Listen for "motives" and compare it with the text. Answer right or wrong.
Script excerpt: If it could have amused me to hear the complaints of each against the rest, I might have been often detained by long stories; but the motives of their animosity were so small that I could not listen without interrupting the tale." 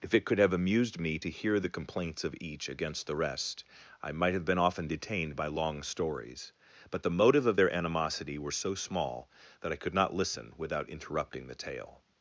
wrong